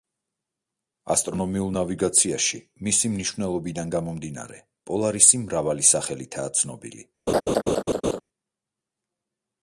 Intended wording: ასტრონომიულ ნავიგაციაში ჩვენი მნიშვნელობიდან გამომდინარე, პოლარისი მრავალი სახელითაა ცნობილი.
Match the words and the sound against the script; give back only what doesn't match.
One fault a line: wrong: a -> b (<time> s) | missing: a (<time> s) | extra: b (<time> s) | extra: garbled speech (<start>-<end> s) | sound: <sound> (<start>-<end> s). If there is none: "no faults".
wrong: ჩვენი -> მისი (2.9 s)
sound: laugh (7.3-8.2 s)